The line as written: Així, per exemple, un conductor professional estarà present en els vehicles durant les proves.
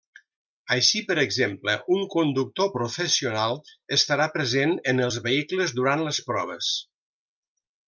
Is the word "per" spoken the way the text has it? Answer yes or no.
yes